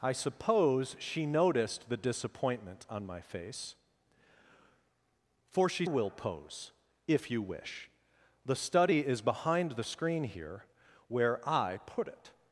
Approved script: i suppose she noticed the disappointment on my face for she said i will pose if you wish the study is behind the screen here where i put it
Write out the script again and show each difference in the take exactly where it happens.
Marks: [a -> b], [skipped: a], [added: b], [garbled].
i suppose she noticed the disappointment on my face for she [skipped: said i] will pose if you wish the study is behind the screen here where i put it